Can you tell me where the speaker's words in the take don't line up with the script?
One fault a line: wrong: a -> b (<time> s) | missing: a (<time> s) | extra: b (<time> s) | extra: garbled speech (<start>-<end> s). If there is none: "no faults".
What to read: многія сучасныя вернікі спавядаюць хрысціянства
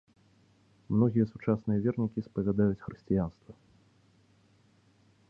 no faults